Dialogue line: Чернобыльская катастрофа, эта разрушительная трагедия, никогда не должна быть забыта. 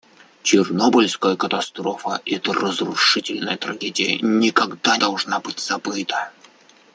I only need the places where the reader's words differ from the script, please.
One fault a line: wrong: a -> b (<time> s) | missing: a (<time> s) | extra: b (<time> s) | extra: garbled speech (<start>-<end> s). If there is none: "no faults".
missing: не (5.0 s)